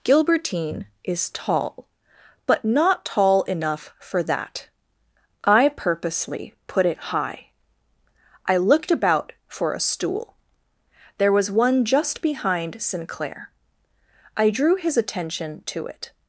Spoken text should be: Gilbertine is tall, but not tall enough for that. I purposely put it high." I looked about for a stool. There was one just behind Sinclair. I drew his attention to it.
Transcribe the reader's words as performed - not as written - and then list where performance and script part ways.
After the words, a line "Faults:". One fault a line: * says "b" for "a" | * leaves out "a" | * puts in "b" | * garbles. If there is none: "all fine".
Gilbertine is tall, but not tall enough for that. I purposely put it high." I looked about for a stool. There was one just behind Sinclair. I drew his attention to it.
Faults:
all fine